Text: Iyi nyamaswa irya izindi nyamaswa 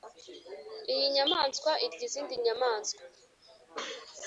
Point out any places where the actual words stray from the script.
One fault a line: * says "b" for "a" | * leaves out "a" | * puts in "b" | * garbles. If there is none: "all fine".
all fine